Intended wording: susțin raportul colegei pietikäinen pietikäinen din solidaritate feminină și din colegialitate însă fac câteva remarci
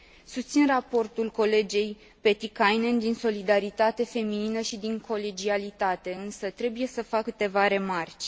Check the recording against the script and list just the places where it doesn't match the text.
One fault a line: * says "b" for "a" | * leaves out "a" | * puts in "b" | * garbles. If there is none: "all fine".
* leaves out "pietikäinen"
* puts in "trebuie să"